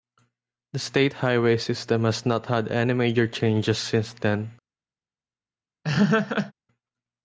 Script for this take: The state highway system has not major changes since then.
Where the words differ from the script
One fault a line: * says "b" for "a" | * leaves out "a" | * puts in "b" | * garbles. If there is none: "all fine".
* puts in "had any"